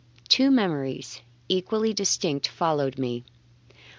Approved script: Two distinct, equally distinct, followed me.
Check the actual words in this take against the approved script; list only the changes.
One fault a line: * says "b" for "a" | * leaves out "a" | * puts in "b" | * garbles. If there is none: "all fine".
* says "memories" for "distinct"